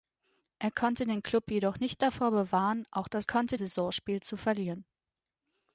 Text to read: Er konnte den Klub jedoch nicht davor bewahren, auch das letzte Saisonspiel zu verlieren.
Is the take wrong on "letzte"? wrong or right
wrong